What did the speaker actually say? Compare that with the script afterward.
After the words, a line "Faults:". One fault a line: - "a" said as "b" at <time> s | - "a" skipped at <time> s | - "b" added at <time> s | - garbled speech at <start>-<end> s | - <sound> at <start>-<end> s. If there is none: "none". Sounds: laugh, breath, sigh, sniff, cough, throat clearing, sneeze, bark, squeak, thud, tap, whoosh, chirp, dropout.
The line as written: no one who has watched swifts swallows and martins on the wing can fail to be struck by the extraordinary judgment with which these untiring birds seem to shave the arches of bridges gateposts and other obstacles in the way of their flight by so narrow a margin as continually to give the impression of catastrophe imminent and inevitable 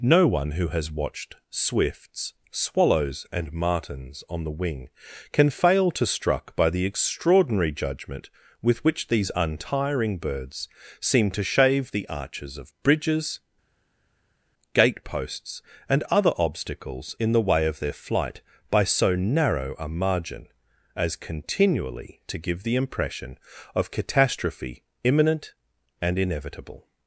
no one who has watched swifts swallows and martins on the wing can fail to struck by the extraordinary judgment with which these untiring birds seem to shave the arches of bridges gateposts and other obstacles in the way of their flight by so narrow a margin as continually to give the impression of catastrophe imminent and inevitable
Faults:
- "be" skipped at 6.1 s